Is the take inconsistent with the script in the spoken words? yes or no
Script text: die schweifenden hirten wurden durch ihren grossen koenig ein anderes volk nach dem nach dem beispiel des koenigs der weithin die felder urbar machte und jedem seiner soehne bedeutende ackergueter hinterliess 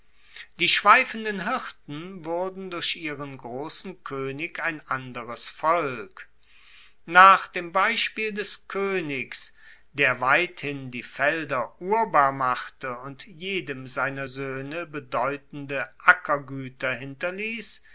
yes